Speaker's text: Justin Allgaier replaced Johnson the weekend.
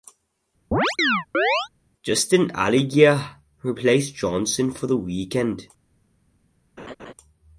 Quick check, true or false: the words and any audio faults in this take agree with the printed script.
false